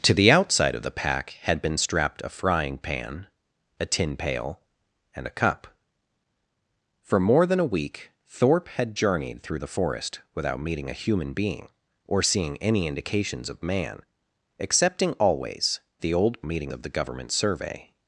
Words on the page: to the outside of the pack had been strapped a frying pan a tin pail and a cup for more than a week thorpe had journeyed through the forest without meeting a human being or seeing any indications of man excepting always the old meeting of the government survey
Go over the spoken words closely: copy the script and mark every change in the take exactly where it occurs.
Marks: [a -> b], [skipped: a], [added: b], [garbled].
to the outside of the pack had been strapped a frying pan a tin pail and a cup for more than a week thorpe had journeyed through the forest without meeting a human being or seeing any indications of man excepting always the old meeting of the government survey